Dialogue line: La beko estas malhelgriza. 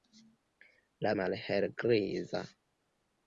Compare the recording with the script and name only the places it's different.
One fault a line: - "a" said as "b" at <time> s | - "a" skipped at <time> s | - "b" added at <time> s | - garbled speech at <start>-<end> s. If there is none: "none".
- "beko estas" skipped at 1.1 s